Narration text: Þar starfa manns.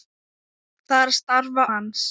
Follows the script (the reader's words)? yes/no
yes